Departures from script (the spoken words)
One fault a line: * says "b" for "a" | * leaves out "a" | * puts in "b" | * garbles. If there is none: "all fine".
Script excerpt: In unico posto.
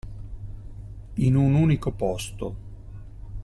* puts in "un"